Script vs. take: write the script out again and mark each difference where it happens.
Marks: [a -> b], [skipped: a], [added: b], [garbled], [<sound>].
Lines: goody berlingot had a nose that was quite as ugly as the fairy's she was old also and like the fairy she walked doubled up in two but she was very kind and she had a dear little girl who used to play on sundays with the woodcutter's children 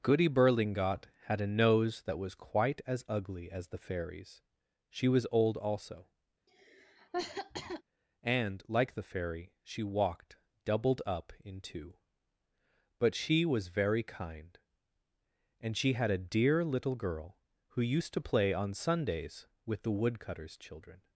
goody berlingot had a nose that was quite as ugly as the fairy's she was old also [cough] and like the fairy she walked doubled up in two but she was very kind and she had a dear little girl who used to play on sundays with the woodcutter's children